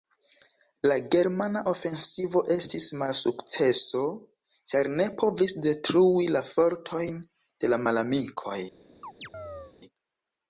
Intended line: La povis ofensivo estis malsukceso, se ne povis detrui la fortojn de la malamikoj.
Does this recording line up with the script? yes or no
no